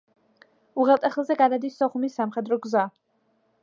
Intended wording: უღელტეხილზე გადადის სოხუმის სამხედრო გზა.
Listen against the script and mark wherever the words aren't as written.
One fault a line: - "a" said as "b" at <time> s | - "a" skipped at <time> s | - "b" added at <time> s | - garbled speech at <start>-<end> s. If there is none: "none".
none